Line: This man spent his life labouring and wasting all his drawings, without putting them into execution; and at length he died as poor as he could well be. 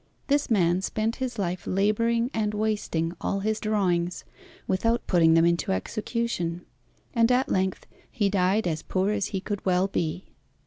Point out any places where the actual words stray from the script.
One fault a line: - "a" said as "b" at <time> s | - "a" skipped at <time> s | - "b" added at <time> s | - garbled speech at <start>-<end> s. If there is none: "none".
none